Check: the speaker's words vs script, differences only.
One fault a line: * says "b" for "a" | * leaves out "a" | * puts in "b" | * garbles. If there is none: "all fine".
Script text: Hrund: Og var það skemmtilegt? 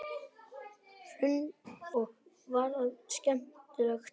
all fine